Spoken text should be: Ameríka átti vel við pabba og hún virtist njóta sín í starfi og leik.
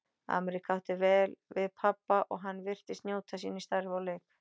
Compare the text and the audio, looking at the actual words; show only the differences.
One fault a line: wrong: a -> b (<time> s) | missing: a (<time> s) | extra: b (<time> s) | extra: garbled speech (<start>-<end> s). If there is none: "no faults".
wrong: hún -> hann (2.5 s)